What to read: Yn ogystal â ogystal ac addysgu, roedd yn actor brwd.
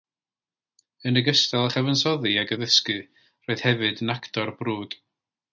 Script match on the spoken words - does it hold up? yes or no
no